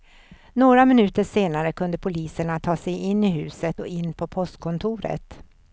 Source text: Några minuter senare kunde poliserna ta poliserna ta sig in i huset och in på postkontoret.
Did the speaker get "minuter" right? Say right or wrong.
right